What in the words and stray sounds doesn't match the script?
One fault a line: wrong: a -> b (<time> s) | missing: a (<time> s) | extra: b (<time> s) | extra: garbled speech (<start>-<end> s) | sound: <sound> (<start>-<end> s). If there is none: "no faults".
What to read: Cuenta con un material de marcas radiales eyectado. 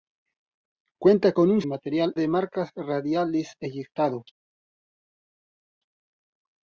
no faults